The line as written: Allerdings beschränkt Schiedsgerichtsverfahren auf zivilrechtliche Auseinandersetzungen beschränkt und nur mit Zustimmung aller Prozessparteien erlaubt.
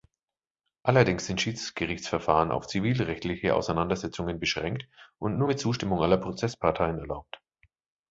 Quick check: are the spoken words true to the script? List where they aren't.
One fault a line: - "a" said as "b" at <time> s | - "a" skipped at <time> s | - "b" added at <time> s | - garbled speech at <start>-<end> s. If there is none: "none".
- "beschränkt" said as "sind" at 1.3 s